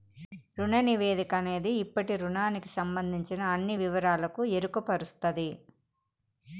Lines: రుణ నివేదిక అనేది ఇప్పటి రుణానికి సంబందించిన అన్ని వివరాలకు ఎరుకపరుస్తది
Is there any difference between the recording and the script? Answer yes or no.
no